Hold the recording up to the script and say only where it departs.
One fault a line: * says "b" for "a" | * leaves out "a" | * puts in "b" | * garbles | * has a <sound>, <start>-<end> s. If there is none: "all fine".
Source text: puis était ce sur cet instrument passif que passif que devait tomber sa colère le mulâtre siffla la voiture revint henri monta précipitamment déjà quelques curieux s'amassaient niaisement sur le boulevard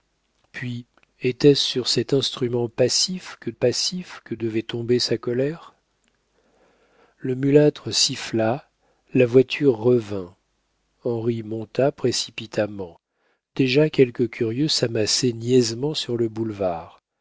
all fine